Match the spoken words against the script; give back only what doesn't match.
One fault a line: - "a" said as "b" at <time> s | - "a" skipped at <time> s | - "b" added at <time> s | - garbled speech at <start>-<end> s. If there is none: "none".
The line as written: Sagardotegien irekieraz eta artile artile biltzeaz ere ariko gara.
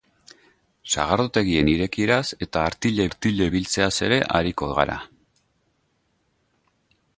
none